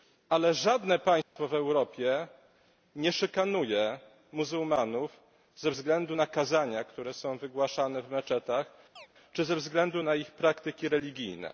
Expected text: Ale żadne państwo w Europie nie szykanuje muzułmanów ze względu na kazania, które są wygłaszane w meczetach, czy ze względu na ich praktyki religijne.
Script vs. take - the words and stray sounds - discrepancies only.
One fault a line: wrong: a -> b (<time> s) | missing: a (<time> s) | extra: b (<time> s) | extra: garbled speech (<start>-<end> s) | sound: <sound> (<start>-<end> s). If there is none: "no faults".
sound: dropout (1.2-1.4 s)
sound: chirp (9.0-9.1 s)